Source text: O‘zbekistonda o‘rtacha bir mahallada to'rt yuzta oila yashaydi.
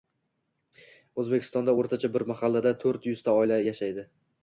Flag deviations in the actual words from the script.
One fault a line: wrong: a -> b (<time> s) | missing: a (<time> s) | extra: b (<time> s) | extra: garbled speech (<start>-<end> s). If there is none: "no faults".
no faults